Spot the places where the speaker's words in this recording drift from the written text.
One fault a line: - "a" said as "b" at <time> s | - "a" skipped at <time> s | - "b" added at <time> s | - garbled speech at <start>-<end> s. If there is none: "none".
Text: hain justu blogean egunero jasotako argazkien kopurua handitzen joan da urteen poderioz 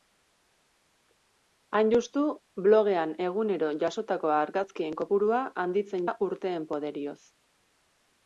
- "joan" skipped at 6.1 s